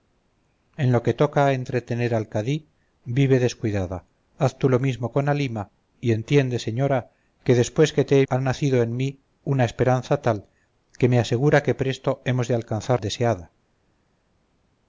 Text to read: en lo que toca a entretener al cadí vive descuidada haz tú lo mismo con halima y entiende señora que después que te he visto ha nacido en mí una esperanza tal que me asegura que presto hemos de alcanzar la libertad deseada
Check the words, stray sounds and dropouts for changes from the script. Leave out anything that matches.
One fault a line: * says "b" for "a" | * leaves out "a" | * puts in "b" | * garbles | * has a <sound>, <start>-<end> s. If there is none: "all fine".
* leaves out "visto"
* leaves out "la libertad"